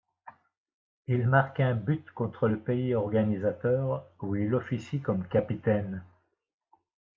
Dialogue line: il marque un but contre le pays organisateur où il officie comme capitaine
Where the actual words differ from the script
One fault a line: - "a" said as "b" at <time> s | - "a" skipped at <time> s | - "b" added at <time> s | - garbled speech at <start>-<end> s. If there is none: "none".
none